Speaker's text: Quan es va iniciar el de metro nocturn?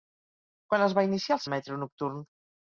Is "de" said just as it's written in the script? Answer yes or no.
yes